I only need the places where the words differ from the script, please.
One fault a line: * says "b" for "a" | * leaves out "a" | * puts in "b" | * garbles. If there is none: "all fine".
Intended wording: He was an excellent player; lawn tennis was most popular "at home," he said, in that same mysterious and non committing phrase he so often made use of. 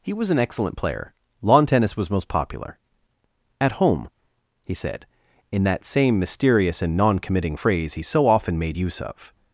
all fine